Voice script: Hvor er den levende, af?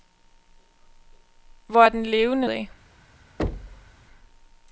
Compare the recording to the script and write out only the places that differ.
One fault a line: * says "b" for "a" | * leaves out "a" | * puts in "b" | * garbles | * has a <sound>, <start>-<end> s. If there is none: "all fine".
* has a thud, 3.4-3.9 s